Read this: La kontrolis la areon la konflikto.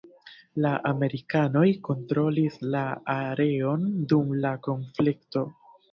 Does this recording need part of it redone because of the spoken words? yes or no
yes